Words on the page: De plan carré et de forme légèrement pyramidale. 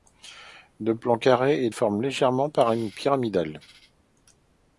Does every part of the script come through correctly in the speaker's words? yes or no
no